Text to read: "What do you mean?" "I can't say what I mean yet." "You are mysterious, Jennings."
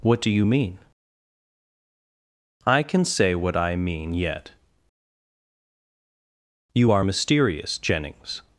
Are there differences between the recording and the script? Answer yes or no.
yes